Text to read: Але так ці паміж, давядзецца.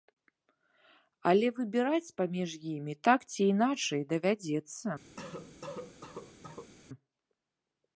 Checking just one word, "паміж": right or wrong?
wrong